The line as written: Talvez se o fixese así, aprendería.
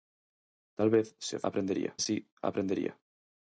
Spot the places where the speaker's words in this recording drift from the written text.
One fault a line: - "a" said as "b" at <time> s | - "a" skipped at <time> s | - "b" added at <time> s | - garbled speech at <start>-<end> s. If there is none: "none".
- "fixese" said as "aprendería" at 1.5 s